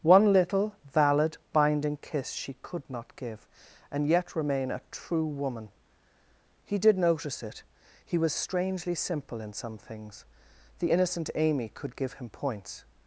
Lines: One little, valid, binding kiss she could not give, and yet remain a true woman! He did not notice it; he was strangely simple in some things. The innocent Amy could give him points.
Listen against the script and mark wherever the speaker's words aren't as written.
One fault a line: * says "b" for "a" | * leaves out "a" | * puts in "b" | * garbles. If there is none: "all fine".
* leaves out "not"